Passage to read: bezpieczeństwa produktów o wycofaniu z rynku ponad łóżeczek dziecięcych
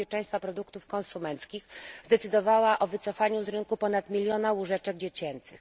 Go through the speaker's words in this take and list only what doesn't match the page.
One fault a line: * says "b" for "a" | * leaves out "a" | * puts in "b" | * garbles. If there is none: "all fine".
* puts in "konsumenckich zdecydowała"
* puts in "miliona"